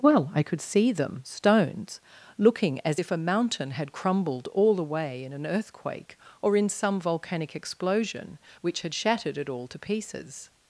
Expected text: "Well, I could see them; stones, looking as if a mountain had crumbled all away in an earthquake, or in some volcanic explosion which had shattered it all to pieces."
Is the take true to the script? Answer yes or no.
yes